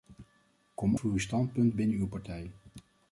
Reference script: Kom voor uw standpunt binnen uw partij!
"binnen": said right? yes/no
yes